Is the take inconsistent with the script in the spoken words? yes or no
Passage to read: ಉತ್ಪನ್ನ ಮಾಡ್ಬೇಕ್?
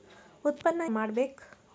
no